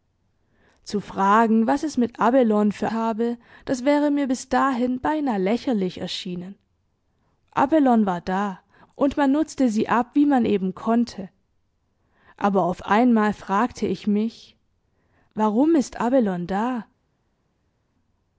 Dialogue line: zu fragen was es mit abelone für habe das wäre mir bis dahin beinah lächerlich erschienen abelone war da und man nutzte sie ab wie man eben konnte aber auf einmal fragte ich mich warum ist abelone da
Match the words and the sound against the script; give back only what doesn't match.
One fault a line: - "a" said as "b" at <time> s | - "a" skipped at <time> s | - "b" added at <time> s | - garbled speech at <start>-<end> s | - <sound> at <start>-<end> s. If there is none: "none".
none